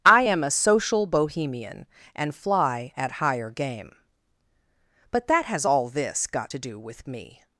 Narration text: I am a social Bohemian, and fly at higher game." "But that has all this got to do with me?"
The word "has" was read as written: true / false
true